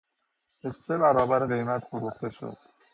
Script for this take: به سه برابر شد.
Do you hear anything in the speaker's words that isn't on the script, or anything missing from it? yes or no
yes